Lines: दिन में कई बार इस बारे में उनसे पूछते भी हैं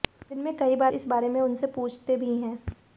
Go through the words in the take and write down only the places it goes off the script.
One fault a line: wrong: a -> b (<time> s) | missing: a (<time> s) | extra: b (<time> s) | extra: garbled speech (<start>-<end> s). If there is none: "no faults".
no faults